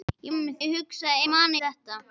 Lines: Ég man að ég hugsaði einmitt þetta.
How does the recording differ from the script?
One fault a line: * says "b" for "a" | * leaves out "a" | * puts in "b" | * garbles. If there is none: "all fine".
* says "einmitt" for "man"
* says "man" for "einmitt"